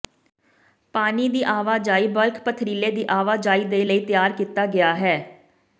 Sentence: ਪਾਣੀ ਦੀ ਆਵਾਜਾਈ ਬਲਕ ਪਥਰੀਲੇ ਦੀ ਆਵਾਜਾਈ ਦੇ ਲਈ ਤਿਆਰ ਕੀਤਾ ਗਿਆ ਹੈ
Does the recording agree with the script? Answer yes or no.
yes